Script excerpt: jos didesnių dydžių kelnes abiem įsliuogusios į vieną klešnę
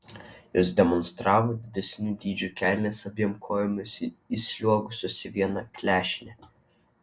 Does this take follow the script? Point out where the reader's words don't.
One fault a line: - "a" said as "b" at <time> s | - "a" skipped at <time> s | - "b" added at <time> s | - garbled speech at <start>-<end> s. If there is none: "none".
- "demonstravo" added at 0.8 s
- "kojomis" added at 3.5 s